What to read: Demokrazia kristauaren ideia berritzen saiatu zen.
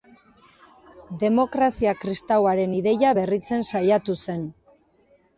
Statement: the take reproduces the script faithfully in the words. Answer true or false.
true